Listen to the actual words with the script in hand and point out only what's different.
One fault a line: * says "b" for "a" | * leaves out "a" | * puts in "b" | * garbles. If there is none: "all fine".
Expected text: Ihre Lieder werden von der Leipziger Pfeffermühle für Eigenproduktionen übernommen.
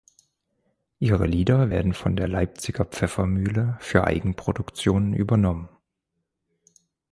all fine